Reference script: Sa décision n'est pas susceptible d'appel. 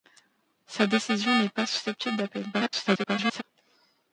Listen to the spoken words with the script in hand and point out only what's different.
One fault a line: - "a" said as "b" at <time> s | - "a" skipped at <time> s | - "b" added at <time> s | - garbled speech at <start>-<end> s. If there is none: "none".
- garbled speech at 2.5-3.4 s